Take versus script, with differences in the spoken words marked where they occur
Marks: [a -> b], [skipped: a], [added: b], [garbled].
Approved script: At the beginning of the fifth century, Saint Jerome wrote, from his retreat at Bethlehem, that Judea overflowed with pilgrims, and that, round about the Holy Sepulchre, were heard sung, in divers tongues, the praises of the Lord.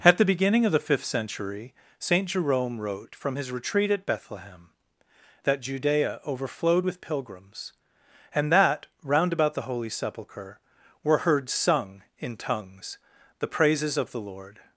At the beginning of the fifth century, Saint Jerome wrote, from his retreat at Bethlehem, that Judea overflowed with pilgrims, and that, round about the Holy Sepulchre, were heard sung, in [skipped: divers] tongues, the praises of the Lord.